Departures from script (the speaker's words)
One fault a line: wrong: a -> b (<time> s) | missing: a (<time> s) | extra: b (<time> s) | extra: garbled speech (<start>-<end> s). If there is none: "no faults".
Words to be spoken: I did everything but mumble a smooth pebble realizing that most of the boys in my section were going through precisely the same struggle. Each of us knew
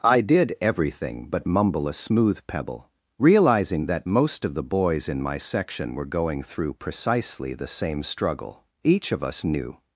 no faults